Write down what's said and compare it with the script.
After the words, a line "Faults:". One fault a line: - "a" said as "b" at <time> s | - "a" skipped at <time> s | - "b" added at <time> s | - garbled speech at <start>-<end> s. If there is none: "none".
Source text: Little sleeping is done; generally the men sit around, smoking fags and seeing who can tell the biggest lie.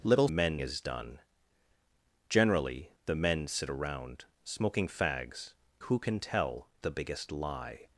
Little men is done; generally the men sit around, smoking fags who can tell the biggest lie.
Faults:
- "sleeping" said as "men" at 0.3 s
- "and seeing" skipped at 5.5 s